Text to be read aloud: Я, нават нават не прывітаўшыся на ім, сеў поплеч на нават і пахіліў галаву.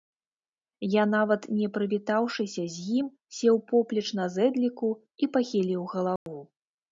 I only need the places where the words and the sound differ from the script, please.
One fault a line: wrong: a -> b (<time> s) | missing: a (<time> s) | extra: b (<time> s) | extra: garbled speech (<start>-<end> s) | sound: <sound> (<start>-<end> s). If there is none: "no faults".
missing: нават (1.4 s)
wrong: на -> з (2.8 s)
wrong: нават -> зэдліку (4.4 s)
sound: dropout (6.2-6.3 s)